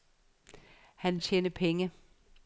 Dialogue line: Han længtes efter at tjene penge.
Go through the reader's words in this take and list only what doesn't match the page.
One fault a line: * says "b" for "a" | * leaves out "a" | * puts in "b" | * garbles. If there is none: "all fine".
* leaves out "længtes efter"